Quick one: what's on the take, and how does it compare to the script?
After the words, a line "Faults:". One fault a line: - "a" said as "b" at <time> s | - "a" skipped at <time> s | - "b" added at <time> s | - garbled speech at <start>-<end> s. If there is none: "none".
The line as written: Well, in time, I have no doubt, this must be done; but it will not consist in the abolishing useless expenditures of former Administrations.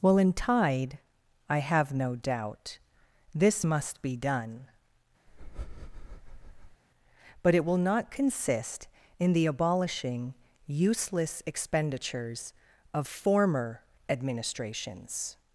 Well, in tide, I have no doubt, this must be done; but it will not consist in the abolishing useless expenditures of former Administrations.
Faults:
- "time" said as "tide" at 0.3 s